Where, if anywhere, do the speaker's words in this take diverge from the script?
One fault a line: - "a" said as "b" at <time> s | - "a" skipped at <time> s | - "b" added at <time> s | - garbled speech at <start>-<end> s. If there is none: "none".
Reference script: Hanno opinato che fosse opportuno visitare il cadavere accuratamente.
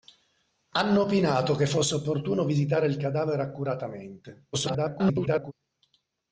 - garbled speech at 4.5-5.5 s